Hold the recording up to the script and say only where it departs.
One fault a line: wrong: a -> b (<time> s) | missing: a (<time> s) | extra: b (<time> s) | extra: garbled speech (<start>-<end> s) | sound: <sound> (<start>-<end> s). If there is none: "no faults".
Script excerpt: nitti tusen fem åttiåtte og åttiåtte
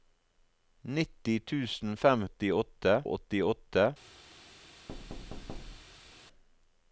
sound: thud (4.9-6.2 s)